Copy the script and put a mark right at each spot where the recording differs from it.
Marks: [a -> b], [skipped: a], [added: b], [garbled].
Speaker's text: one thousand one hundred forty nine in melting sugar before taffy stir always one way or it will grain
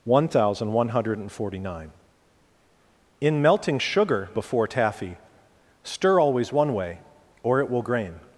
one thousand one hundred forty nine in melting sugar before taffy stir always one way or it will grain